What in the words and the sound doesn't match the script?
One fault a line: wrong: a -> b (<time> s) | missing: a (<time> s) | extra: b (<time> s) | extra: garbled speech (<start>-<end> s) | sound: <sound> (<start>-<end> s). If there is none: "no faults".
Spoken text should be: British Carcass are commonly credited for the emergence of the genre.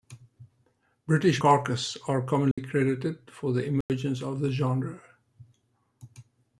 sound: dropout (2.5-2.6 s)
sound: dropout (3.8-3.9 s)